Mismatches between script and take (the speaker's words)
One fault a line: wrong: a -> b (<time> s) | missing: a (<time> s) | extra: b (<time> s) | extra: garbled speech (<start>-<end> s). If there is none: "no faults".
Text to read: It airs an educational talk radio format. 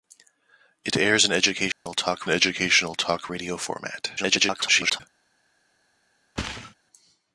extra: educational talk (2.3 s)
extra: garbled speech (4.2-5.0 s)